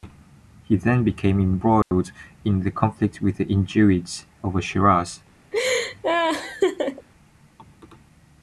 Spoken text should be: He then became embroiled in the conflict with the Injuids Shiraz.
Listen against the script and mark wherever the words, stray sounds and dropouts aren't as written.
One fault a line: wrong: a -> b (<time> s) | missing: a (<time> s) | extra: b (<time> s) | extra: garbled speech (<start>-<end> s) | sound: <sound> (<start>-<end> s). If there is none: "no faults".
sound: dropout (1.8-1.9 s)
extra: over (4.4 s)
sound: laugh (5.5-7.1 s)